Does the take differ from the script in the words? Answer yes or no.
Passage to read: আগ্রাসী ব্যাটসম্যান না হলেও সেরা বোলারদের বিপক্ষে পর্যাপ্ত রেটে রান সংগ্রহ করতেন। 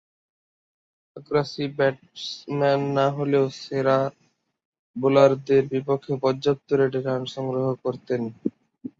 no